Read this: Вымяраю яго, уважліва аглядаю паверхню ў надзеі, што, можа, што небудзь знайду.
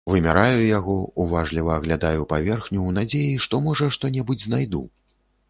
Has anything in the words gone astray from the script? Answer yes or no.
no